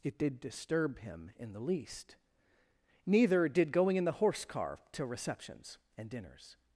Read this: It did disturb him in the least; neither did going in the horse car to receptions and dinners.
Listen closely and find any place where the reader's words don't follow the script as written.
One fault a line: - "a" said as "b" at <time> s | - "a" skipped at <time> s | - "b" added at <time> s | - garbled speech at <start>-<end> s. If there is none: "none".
none